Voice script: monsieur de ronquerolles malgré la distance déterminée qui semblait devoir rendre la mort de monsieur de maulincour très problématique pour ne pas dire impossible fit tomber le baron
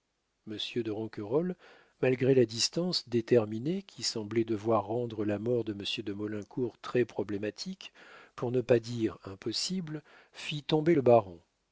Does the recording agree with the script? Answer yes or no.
yes